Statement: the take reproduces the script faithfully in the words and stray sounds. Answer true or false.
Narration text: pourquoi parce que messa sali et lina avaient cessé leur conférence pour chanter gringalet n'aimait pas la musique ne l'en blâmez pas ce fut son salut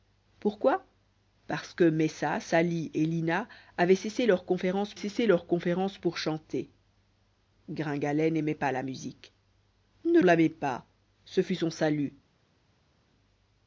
false